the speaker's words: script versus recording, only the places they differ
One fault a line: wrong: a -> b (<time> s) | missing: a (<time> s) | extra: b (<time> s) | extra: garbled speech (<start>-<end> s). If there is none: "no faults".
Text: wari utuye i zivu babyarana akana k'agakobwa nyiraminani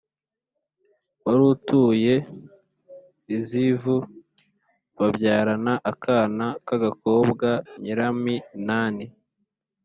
no faults